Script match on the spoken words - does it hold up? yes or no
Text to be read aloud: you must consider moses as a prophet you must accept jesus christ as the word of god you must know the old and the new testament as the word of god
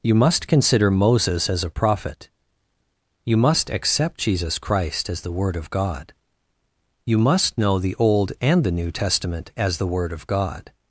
yes